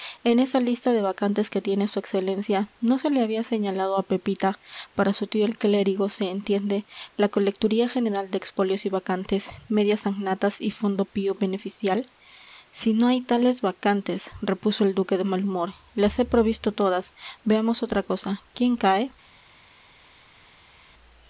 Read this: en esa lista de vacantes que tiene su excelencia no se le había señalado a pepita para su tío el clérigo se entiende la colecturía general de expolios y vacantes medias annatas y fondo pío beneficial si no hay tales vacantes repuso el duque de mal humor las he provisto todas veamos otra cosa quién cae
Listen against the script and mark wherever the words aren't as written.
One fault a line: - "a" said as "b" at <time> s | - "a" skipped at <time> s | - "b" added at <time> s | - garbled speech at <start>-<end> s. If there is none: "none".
none